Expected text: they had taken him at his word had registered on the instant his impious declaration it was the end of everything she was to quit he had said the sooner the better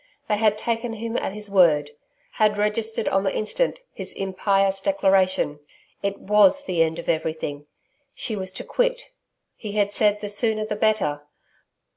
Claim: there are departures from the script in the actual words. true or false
false